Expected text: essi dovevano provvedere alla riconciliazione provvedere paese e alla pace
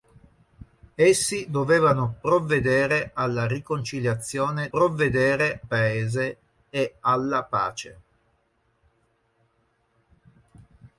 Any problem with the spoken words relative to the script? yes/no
no